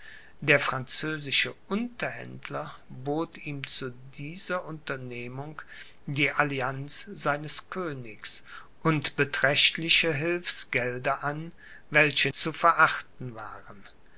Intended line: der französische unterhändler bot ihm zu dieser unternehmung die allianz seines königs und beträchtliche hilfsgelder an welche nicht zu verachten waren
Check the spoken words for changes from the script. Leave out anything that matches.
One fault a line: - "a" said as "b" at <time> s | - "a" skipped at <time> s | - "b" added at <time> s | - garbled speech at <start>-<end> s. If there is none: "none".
- "nicht" skipped at 12.3 s